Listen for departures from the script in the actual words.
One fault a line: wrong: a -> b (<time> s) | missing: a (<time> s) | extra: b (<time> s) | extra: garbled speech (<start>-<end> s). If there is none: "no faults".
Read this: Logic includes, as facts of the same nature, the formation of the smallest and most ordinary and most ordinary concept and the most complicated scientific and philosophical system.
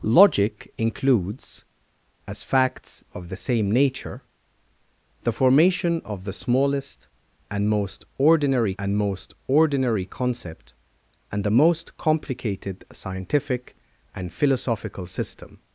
no faults